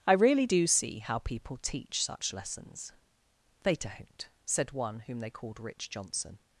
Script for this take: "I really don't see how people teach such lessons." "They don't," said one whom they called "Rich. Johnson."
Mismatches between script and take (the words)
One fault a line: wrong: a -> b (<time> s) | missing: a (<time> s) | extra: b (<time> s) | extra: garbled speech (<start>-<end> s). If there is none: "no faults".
wrong: don't -> do (0.5 s)